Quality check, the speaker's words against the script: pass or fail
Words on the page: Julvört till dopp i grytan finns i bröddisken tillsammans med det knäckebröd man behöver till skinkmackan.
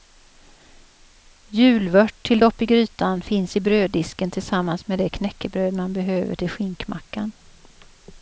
pass